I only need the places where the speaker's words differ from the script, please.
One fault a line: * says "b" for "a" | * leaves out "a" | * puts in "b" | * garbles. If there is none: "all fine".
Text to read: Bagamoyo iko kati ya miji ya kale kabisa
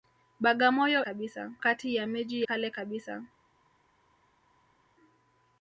* says "kabisa" for "iko"
* leaves out "ya"